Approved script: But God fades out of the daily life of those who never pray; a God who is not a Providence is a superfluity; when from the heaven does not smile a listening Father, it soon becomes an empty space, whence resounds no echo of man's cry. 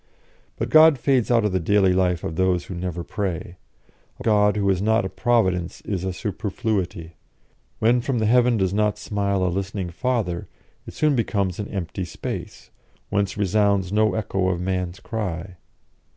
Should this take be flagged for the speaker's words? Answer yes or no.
no